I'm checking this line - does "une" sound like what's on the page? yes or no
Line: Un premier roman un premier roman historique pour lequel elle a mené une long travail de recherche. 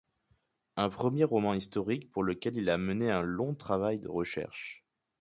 no